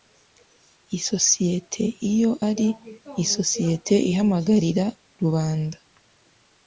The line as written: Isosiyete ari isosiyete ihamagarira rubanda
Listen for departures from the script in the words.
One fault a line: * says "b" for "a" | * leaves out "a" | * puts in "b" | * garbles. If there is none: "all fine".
* puts in "iyo"